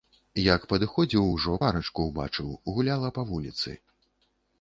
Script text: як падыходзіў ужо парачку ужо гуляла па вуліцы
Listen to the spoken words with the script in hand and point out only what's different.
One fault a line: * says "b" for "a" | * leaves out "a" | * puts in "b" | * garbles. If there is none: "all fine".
* says "ўбачыў" for "ужо"